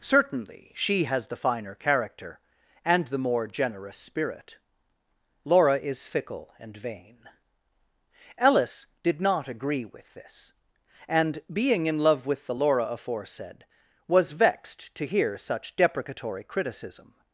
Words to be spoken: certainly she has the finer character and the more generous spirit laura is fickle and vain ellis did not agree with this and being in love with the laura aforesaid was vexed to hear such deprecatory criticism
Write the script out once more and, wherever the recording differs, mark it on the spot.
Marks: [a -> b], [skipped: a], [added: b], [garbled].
certainly she has the finer character and the more generous spirit laura is fickle and vain ellis did not agree with this and being in love with the laura aforesaid was vexed to hear such deprecatory criticism